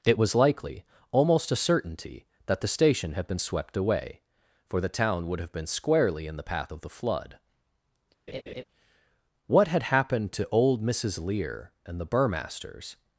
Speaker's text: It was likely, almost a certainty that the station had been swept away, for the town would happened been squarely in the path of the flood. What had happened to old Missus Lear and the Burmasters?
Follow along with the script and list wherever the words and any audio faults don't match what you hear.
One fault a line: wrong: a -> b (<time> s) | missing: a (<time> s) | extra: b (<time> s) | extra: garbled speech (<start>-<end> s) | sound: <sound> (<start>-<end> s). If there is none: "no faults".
wrong: happened -> have (5.4 s)
sound: laugh (8.3-8.6 s)